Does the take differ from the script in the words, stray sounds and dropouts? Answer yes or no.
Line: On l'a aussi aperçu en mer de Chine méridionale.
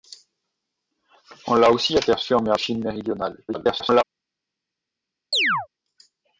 yes